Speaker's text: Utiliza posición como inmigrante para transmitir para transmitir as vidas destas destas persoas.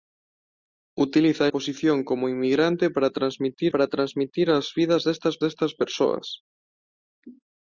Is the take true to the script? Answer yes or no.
yes